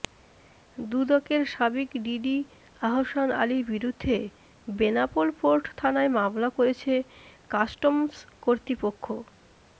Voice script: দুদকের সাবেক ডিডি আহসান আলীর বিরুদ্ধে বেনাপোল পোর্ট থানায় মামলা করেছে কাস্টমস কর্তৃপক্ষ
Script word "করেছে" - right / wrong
right